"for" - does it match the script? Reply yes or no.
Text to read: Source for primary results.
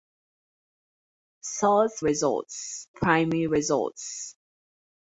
no